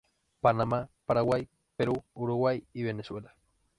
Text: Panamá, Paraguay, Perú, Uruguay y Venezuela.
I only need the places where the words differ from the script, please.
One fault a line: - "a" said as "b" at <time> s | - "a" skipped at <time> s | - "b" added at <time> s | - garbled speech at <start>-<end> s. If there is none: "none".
none